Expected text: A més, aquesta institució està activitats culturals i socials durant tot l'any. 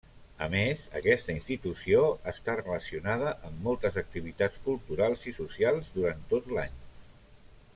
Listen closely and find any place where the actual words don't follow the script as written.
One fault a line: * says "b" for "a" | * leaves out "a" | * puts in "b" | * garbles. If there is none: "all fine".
* puts in "relacionada amb moltes"